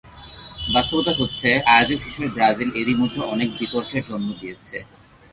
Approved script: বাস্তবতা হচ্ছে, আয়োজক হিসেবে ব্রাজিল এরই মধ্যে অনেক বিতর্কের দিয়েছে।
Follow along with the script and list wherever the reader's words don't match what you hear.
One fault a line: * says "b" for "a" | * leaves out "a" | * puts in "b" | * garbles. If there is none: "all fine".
* puts in "জন্ম"